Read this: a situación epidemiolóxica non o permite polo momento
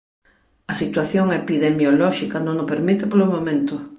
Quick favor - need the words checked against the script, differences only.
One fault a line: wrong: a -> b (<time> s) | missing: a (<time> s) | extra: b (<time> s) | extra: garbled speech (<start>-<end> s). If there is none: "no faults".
no faults